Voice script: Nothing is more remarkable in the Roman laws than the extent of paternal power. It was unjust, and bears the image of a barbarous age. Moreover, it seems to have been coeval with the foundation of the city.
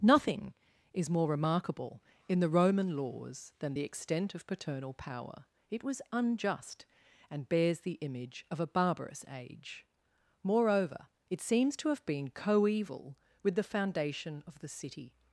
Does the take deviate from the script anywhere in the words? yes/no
no